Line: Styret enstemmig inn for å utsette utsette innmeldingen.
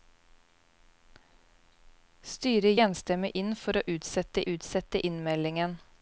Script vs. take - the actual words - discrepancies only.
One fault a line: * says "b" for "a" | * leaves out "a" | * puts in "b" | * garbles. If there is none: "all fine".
all fine